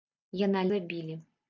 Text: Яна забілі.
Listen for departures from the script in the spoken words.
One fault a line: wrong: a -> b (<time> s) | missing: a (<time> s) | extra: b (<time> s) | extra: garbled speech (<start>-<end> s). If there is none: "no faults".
no faults